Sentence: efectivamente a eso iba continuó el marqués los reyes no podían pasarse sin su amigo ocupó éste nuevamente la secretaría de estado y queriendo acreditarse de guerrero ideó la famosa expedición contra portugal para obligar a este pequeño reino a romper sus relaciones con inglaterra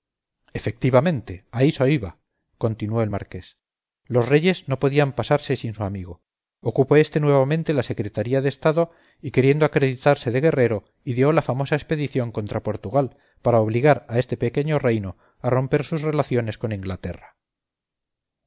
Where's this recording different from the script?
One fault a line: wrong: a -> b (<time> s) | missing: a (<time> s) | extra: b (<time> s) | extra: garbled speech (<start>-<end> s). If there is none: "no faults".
no faults